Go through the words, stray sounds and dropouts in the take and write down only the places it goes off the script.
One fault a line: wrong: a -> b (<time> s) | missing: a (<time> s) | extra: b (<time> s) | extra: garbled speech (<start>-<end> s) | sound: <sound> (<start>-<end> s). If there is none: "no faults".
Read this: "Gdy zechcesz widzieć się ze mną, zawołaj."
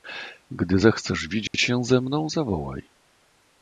sound: dropout (1.5-1.5 s)